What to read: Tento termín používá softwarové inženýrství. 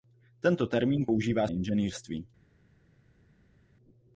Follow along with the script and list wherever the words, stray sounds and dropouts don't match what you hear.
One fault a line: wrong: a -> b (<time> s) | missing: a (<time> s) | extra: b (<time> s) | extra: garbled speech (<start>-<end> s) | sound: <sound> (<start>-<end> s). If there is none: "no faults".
missing: softwarové (1.5 s)